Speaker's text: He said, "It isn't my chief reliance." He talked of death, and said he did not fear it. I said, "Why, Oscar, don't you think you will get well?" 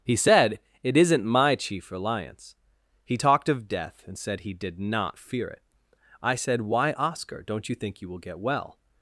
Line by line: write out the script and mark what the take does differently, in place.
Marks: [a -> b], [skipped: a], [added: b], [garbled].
He said, "It isn't my chief reliance." He talked of death, and said he did not fear it. I said, "Why, Oscar, don't you think you will get well?"